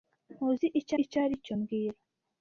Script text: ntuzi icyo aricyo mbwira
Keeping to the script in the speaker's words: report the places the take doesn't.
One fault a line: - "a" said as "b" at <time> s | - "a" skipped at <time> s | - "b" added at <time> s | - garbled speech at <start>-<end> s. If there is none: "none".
- "icyo" added at 1.0 s